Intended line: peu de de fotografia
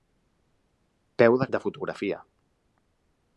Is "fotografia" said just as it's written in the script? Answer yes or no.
yes